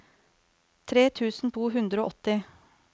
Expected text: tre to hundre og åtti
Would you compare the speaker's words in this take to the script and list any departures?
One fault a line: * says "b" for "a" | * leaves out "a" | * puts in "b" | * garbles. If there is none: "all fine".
* puts in "tusen"